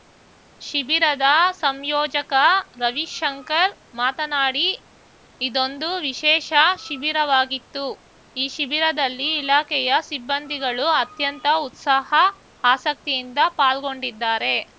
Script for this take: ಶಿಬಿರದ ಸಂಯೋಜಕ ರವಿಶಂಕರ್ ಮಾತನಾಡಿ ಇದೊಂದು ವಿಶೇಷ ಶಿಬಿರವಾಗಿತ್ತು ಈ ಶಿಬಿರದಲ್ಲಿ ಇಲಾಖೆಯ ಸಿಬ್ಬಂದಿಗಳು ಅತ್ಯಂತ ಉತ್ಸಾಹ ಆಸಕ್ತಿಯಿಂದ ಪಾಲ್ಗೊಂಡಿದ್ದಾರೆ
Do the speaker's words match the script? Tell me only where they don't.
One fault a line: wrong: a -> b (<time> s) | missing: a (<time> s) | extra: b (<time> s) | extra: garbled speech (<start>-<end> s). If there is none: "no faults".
no faults